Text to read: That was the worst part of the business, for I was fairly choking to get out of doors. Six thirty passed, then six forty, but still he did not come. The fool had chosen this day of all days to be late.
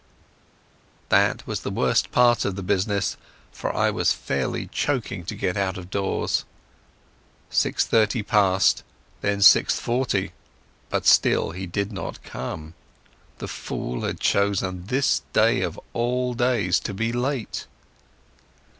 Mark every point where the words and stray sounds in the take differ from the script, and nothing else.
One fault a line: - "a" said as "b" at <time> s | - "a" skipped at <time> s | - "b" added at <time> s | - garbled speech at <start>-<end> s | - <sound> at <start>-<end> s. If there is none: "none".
none